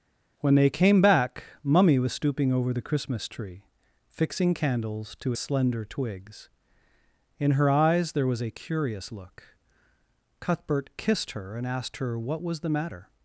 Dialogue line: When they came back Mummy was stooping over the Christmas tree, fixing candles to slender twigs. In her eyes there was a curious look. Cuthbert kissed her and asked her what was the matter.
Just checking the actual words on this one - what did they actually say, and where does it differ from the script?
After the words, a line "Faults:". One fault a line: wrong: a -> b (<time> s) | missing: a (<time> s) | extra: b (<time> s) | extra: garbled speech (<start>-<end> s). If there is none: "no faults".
When they came back Mummy was stooping over the Christmas tree, fixing candles to slender twigs. In her eyes there was a curious look. Cuthbert kissed her and asked her what was the matter.
Faults:
no faults